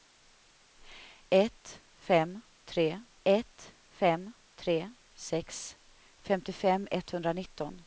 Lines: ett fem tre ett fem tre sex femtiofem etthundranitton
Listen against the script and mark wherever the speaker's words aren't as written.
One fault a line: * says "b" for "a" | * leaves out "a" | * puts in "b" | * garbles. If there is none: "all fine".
all fine